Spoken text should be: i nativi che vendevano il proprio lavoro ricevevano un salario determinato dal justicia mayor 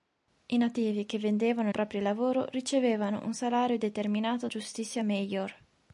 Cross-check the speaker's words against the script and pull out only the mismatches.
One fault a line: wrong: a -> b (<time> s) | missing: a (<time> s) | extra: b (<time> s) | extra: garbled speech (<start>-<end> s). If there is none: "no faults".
missing: il (1.7 s)
missing: dal (4.5 s)